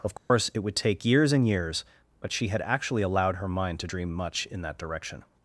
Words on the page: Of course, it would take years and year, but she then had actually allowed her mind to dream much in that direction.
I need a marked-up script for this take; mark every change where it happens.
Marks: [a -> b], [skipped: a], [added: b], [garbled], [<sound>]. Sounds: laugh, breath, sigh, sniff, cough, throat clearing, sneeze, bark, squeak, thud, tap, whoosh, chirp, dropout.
Of course, [dropout] it would take years and [year, -> years] but she [skipped: then] had actually allowed her mind to dream much in that direction.